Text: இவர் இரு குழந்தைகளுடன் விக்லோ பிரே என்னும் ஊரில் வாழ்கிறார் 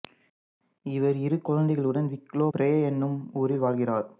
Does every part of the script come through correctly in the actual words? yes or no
yes